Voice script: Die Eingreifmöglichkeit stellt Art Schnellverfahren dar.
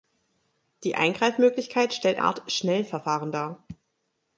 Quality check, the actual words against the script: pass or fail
pass